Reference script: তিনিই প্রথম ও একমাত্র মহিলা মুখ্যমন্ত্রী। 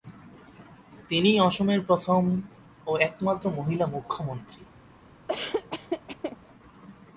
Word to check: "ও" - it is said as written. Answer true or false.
true